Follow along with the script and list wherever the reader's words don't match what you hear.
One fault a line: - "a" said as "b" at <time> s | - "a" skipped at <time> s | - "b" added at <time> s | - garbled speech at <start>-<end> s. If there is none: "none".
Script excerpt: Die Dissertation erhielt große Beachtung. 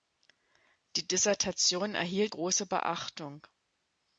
none